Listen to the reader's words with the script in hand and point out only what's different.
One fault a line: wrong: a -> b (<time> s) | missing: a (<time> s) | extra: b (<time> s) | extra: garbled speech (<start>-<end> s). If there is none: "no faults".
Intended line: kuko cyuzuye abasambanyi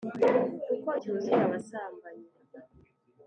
no faults